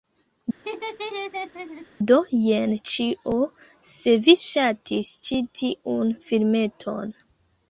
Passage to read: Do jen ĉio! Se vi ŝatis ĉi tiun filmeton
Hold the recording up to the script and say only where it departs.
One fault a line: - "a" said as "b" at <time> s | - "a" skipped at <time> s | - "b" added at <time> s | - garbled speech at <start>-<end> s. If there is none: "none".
none